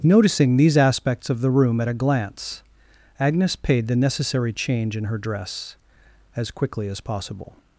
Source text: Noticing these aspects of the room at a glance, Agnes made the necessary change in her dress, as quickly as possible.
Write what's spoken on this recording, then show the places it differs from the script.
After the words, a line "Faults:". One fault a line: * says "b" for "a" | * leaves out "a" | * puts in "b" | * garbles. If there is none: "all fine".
Noticing these aspects of the room at a glance, Agnes paid the necessary change in her dress, as quickly as possible.
Faults:
* says "paid" for "made"